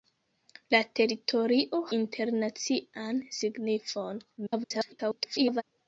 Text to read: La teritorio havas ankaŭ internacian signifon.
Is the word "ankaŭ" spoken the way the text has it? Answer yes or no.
no